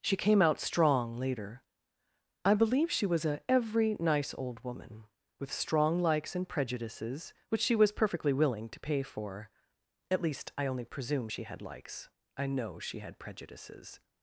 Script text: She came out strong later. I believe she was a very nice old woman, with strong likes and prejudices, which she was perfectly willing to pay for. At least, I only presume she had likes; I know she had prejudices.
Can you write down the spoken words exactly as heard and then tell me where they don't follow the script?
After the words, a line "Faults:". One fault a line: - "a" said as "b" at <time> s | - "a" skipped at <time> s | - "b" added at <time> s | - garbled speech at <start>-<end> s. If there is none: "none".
She came out strong later. I believe she was a every nice old woman, with strong likes and prejudices, which she was perfectly willing to pay for. At least, I only presume she had likes; I know she had prejudices.
Faults:
- "very" said as "every" at 3.5 s